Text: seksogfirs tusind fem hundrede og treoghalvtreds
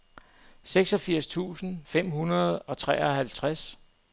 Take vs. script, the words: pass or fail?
pass